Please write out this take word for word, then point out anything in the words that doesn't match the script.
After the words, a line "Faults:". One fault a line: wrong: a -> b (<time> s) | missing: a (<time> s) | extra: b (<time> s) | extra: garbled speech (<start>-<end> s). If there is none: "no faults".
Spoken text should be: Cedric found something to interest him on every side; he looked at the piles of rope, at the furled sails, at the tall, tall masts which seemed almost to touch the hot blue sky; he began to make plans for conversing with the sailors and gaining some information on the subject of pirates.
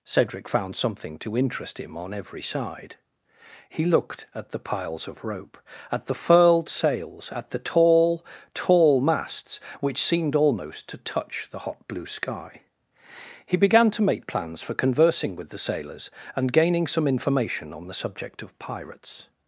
Cedric found something to interest him on every side; he looked at the piles of rope, at the furled sails, at the tall, tall masts which seemed almost to touch the hot blue sky; he began to make plans for conversing with the sailors and gaining some information on the subject of pirates.
Faults:
no faults